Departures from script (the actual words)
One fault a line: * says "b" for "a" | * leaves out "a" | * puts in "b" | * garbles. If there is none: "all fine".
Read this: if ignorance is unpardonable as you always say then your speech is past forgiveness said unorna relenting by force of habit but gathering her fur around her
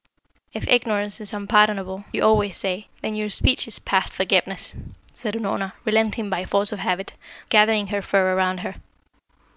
* leaves out "as"
* leaves out "but"